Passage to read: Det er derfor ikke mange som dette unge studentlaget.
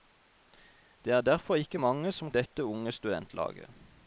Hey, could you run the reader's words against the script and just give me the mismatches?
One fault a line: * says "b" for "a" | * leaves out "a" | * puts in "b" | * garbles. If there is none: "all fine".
all fine